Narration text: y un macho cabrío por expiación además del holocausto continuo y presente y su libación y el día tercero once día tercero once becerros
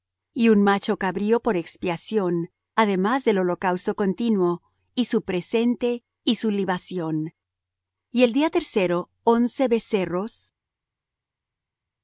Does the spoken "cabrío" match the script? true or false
true